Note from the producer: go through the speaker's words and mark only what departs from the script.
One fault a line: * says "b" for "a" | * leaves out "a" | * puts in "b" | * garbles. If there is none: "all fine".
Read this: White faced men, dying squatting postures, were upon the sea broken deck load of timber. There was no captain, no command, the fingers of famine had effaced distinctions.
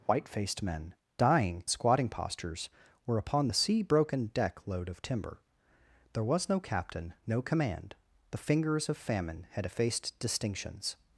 all fine